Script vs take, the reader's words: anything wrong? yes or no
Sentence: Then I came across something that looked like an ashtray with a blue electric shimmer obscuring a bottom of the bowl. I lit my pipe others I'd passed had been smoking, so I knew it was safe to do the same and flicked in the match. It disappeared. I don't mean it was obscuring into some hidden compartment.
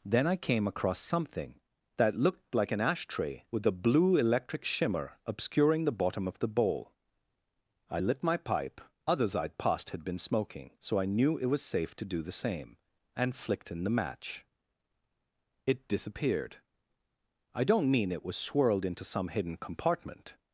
yes